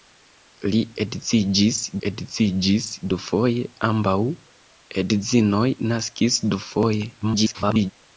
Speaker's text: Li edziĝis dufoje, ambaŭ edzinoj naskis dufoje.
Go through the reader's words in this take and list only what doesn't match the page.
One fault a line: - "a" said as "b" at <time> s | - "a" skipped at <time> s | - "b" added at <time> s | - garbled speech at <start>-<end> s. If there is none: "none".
- "edziĝis" added at 2.1 s
- garbled speech at 7.2-7.9 s